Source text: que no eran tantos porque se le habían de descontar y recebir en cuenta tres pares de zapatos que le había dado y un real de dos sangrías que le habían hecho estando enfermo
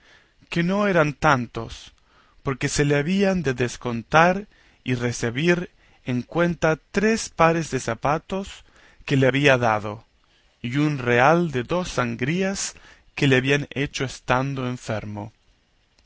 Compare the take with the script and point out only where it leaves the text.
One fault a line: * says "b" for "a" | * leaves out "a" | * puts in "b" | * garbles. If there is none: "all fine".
all fine